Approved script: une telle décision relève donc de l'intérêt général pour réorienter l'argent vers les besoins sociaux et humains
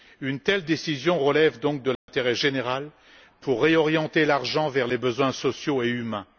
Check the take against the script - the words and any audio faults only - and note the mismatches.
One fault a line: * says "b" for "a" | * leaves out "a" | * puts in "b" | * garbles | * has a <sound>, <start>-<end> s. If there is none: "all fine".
* has a dropout, 1.9-2.1 s